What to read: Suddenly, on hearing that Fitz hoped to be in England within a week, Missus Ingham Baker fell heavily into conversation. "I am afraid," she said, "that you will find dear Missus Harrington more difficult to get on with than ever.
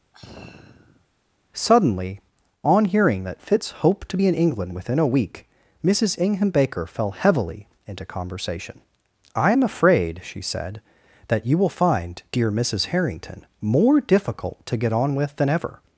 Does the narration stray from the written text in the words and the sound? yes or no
yes